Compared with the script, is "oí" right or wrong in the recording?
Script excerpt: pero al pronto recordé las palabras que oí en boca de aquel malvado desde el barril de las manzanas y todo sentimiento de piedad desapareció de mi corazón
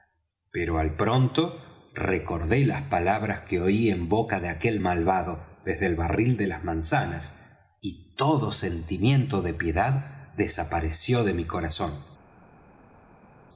right